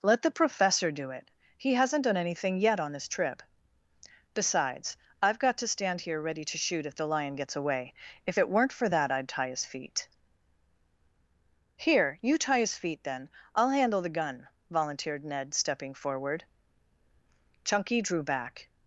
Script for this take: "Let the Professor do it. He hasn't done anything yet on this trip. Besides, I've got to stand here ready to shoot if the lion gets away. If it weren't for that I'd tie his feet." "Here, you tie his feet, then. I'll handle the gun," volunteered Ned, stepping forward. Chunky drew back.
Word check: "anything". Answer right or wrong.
right